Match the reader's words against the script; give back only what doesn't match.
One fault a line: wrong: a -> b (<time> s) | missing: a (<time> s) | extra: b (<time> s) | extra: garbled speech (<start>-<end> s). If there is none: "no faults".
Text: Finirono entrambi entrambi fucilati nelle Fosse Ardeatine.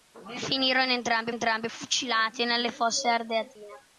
no faults